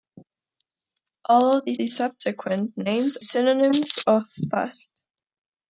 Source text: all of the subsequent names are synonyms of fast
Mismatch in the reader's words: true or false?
true